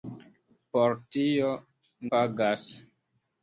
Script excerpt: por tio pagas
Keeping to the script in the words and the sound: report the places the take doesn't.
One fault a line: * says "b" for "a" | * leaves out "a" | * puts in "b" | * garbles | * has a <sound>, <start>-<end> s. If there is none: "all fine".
all fine